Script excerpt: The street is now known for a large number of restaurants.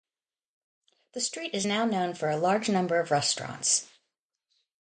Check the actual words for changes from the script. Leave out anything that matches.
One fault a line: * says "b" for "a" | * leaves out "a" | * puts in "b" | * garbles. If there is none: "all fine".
all fine